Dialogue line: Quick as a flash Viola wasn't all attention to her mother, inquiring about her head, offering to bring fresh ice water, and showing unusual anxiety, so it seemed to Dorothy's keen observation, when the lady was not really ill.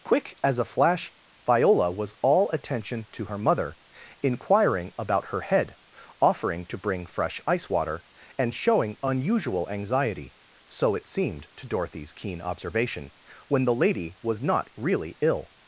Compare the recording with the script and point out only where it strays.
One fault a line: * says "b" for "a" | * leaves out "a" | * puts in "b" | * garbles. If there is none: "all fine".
* says "was" for "wasn't"